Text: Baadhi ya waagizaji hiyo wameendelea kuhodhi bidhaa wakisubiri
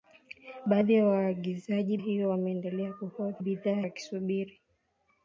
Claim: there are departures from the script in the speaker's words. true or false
false